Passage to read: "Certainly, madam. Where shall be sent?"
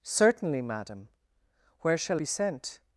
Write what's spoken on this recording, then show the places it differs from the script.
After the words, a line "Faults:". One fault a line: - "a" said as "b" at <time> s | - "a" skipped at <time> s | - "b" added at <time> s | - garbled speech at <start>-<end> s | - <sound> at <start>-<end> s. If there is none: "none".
"Certainly, madam. Where shall be sent?"
Faults:
none